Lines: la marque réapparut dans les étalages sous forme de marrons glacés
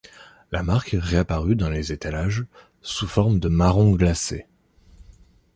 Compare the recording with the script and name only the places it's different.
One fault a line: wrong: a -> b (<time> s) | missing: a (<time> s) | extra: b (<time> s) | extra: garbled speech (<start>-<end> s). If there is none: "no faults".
no faults